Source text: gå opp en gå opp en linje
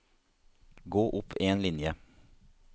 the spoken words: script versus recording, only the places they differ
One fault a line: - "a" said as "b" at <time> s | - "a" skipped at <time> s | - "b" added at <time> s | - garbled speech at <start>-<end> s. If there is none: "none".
- "gå opp en" skipped at 1.6 s